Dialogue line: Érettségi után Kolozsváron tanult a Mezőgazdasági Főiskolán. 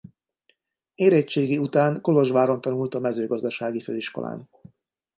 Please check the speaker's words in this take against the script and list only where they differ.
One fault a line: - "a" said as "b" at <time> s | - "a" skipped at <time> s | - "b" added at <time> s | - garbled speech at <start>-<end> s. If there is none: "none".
none